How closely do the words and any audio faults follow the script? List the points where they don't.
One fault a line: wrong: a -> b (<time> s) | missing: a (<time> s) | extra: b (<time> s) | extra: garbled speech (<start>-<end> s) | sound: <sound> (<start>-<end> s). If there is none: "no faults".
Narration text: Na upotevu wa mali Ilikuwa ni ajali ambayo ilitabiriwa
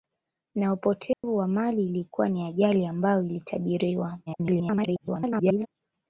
sound: dropout (1.1-1.2 s)
extra: garbled speech (4.3-5.7 s)